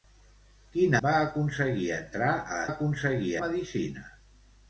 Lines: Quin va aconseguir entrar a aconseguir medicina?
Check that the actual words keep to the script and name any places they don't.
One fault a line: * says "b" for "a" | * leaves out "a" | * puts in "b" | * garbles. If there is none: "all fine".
all fine